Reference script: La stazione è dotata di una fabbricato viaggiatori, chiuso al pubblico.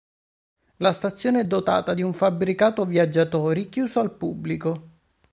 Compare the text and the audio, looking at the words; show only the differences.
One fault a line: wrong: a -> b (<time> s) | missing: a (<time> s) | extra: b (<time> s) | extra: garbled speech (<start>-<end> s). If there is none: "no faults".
wrong: una -> un (2.0 s)